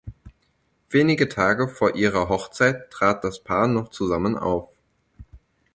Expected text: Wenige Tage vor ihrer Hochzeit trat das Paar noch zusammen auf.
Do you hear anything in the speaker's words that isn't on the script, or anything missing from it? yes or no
no